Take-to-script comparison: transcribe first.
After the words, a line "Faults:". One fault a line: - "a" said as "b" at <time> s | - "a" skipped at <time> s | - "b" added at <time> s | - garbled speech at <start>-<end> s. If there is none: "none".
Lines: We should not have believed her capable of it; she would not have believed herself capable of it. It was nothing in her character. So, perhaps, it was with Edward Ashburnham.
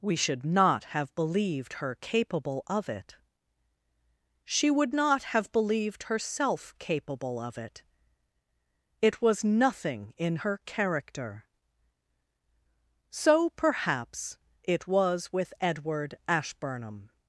We should not have believed her capable of it; she would not have believed herself capable of it. It was nothing in her character. So, perhaps, it was with Edward Ashburnham.
Faults:
none